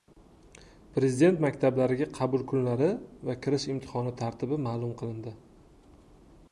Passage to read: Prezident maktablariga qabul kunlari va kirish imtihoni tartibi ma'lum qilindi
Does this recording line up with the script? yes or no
yes